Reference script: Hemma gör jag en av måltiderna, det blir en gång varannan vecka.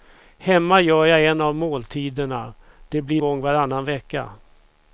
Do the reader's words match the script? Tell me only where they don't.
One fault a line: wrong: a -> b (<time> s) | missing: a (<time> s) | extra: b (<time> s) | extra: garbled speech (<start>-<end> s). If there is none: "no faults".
missing: en (3.2 s)